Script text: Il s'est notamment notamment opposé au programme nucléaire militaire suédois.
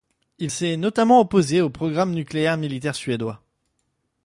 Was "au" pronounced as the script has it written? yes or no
yes